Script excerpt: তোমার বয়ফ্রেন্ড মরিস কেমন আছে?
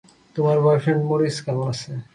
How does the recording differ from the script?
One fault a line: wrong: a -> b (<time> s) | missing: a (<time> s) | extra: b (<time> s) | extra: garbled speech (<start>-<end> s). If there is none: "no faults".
no faults